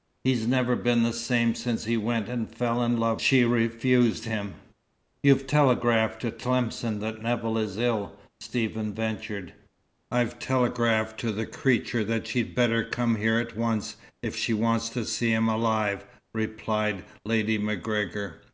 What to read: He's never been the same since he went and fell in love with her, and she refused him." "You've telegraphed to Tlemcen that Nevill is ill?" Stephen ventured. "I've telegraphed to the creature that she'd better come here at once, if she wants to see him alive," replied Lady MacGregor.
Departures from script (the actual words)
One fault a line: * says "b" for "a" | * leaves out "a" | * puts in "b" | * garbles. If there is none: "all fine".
* leaves out "with her and"